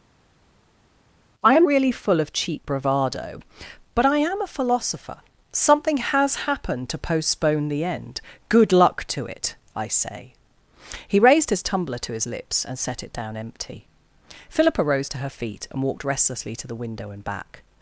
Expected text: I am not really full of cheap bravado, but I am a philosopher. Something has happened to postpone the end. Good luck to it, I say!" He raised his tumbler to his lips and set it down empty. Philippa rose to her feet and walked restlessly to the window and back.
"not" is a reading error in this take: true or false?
true